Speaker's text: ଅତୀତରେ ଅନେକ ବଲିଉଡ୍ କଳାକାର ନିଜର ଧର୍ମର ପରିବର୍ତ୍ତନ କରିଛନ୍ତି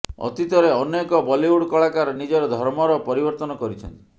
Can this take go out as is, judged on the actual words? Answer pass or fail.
pass